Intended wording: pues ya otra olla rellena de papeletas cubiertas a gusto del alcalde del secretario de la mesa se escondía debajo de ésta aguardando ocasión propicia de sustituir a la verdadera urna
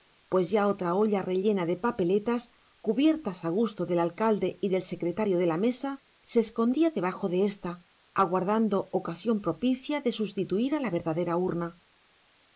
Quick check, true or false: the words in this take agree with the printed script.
false